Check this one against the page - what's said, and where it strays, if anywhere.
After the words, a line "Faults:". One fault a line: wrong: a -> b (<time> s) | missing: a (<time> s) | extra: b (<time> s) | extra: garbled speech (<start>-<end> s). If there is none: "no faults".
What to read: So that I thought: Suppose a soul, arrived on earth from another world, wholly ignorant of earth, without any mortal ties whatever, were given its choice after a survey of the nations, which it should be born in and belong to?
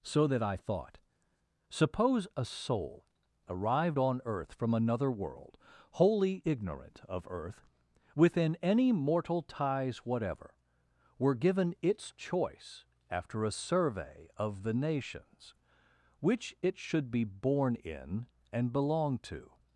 So that I thought: Suppose a soul, arrived on earth from another world, wholly ignorant of earth, within any mortal ties whatever, were given its choice after a survey of the nations, which it should be born in and belong to?
Faults:
wrong: without -> within (8.1 s)